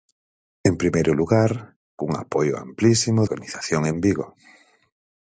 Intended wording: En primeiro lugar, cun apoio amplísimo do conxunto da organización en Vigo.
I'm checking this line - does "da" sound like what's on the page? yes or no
no